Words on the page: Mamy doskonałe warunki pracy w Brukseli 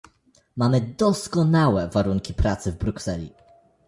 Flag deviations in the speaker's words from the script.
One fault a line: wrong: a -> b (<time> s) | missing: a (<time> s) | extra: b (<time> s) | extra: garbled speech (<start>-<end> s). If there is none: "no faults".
no faults